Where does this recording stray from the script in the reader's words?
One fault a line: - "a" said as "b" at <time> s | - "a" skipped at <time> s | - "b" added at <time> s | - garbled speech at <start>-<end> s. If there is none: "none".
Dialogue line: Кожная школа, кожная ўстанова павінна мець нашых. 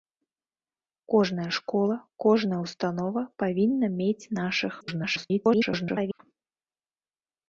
- garbled speech at 4.8-6.2 s